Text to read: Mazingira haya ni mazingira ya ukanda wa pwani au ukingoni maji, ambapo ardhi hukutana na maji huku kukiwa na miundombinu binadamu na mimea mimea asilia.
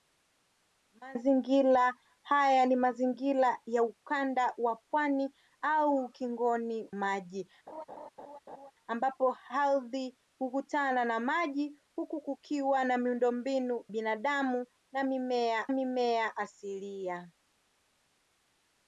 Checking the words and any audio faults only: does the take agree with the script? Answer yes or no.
no